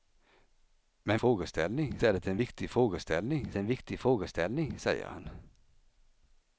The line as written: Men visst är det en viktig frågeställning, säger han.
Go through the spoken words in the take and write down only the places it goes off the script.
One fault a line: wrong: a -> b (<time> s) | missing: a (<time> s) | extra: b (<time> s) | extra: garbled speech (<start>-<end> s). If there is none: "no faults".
wrong: visst -> frågeställning (1.2 s)
extra: en viktig frågeställning (3.5 s)